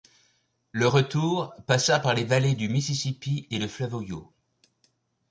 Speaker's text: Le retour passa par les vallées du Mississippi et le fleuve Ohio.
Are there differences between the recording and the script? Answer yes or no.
no